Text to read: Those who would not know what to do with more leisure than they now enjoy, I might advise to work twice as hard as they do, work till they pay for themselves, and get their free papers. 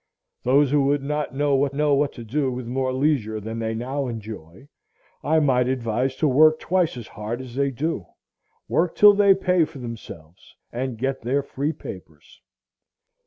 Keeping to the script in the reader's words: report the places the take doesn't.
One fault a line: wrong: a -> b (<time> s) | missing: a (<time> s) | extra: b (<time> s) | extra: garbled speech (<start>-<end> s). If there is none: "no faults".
extra: know what (1.7 s)